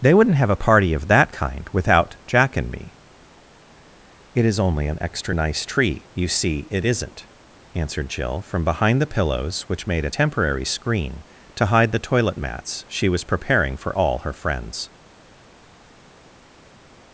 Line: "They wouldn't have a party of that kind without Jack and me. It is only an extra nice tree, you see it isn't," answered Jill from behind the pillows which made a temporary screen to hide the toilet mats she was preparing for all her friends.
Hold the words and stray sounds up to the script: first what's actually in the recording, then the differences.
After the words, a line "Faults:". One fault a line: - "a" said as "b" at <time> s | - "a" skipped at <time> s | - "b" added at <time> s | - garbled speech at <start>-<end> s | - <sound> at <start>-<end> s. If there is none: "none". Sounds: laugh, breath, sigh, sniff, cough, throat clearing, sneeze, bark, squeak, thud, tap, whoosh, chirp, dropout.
"They wouldn't have a party of that kind without Jack and me. It is only an extra nice tree, you see it isn't," answered Jill from behind the pillows which made a temporary screen to hide the toilet mats she was preparing for all her friends.
Faults:
none